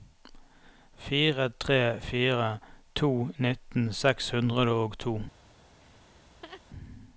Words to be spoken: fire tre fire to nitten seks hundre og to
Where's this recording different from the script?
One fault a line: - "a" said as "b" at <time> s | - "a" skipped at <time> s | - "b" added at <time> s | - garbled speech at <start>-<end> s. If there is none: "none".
none